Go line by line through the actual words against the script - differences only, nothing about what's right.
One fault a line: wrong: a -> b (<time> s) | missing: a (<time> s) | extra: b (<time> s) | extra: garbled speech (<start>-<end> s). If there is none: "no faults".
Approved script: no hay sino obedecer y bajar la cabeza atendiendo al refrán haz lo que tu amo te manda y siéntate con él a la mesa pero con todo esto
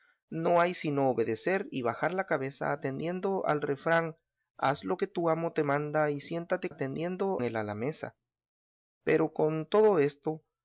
wrong: con -> atendiendo (6.7 s)